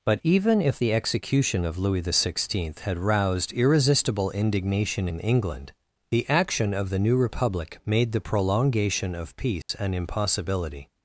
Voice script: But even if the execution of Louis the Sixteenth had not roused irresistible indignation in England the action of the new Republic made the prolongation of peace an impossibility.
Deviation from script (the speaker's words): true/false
true